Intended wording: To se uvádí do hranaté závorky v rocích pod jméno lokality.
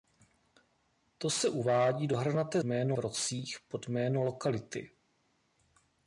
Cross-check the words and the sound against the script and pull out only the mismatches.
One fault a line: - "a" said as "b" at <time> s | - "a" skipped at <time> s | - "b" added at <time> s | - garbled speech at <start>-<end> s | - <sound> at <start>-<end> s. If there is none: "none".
- "závorky" said as "jméno" at 2.6 s